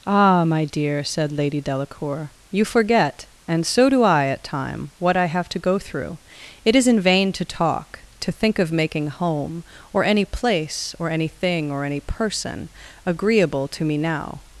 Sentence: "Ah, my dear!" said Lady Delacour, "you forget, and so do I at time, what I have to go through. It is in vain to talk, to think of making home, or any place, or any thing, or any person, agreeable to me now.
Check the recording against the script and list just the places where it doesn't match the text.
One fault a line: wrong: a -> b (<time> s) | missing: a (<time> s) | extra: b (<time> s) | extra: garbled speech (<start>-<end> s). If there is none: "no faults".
no faults